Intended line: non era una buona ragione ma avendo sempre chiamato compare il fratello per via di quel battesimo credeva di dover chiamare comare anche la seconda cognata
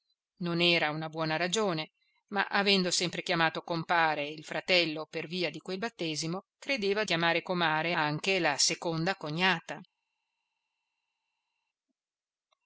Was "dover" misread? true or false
true